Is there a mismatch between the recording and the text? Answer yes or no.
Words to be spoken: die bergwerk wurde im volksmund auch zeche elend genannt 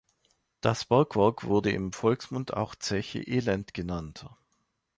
yes